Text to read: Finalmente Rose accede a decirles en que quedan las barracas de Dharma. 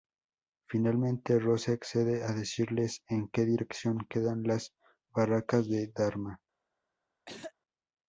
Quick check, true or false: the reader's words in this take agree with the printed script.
false